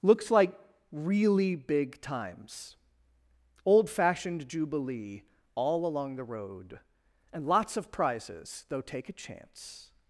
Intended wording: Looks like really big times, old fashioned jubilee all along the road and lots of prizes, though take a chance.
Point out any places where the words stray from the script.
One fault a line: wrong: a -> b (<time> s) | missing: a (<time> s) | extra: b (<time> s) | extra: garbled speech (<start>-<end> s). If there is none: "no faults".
no faults